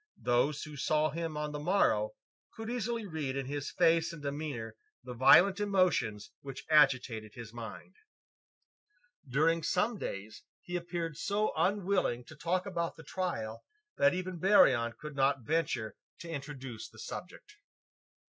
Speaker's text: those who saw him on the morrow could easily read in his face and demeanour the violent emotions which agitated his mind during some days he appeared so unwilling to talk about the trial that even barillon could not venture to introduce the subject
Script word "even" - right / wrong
right